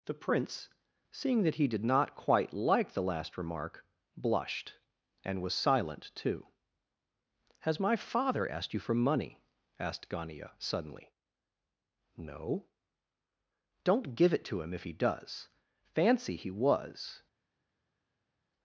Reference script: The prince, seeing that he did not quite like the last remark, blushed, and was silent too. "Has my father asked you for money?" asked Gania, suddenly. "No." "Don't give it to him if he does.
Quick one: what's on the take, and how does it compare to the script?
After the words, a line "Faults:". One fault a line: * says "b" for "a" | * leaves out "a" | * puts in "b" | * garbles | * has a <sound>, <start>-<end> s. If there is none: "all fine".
The prince, seeing that he did not quite like the last remark, blushed, and was silent too. "Has my father asked you for money?" asked Gania, suddenly. "No." "Don't give it to him if he does. Fancy, he was
Faults:
* puts in "Fancy he was"